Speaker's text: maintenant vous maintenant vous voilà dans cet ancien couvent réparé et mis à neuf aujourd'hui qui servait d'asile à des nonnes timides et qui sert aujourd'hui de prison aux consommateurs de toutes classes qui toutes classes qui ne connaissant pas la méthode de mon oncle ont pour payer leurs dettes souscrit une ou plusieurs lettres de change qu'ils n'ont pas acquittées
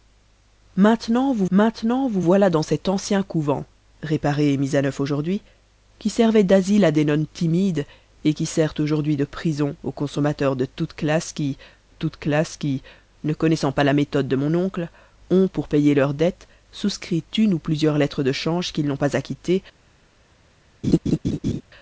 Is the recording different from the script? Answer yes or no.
no